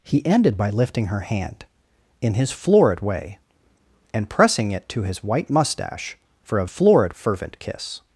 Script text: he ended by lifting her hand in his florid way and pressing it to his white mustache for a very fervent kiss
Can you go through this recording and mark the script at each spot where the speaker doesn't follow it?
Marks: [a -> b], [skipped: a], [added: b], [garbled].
he ended by lifting her hand in his florid way and pressing it to his white mustache for a [very -> florid] fervent kiss